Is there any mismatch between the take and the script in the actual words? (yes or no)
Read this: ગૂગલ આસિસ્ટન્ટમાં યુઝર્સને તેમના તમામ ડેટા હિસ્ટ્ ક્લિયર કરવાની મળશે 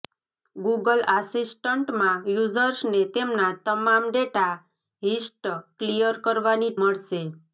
no